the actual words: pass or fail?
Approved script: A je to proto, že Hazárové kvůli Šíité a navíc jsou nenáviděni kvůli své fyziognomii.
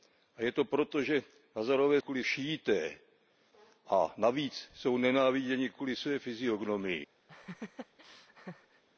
pass